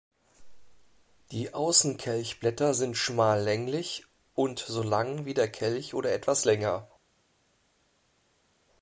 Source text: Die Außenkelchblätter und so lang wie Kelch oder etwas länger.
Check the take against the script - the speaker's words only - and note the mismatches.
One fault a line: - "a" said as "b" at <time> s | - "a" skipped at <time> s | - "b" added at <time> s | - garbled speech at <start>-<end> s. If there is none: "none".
- "sind schmal länglich" added at 2.7 s
- "der" added at 5.3 s